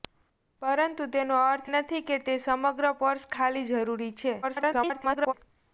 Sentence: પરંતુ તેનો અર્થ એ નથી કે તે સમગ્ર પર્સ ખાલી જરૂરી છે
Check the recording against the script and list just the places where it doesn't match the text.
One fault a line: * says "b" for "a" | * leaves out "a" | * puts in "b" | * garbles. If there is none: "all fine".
* leaves out "એ"
* garbles